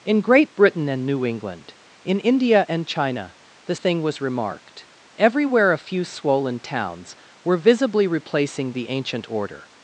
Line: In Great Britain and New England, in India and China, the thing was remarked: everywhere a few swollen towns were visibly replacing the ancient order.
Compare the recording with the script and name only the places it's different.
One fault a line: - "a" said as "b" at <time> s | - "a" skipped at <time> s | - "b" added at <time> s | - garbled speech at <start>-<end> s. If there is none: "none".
none